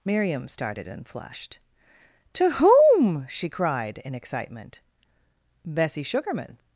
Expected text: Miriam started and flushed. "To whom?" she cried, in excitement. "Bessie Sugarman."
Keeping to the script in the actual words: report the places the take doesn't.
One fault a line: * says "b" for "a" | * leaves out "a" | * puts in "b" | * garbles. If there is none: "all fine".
all fine